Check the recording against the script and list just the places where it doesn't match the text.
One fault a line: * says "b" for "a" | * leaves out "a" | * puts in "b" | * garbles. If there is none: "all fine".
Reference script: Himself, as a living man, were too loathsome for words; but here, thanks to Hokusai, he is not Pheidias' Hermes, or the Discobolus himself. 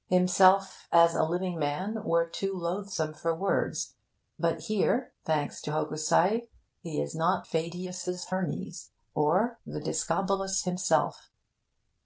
all fine